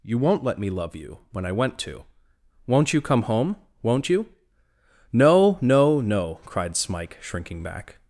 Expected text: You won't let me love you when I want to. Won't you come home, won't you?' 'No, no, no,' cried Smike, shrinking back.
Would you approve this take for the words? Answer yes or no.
no